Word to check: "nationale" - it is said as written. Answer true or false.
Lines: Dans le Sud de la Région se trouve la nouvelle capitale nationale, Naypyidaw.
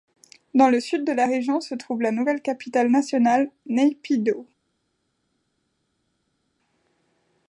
true